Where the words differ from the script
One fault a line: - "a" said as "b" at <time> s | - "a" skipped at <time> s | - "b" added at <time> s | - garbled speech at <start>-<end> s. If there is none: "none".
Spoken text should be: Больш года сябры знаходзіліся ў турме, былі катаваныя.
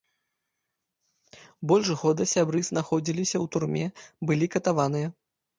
none